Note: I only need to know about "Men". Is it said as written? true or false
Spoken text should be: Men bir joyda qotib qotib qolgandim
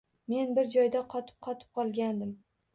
true